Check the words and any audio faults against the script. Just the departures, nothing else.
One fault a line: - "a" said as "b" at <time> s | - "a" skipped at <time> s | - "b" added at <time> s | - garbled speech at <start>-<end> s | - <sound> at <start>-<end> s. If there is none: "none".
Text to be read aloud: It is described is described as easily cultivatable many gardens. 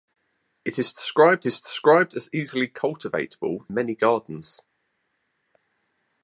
none